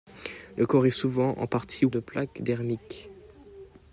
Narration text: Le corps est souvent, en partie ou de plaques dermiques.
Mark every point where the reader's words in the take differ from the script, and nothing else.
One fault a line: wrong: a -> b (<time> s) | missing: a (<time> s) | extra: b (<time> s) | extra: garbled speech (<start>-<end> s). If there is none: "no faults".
no faults